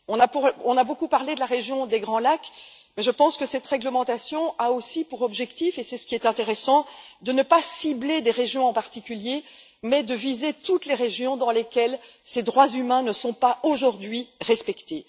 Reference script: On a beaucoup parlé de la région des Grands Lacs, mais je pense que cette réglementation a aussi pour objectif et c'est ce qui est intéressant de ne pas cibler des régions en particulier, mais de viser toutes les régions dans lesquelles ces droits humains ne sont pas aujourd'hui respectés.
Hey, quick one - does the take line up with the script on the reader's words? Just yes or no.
yes